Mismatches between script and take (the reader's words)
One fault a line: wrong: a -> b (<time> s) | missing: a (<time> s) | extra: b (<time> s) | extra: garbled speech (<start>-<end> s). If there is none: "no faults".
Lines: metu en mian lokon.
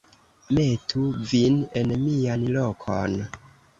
extra: vin (1.3 s)